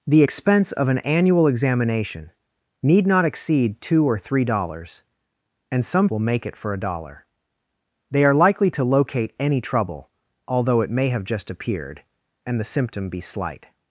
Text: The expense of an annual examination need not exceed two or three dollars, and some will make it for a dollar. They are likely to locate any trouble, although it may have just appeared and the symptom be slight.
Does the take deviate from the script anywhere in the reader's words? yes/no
no